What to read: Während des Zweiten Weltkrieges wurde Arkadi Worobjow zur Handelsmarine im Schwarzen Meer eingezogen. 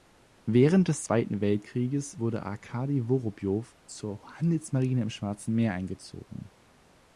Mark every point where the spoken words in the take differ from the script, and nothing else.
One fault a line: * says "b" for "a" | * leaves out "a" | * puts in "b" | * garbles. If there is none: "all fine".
all fine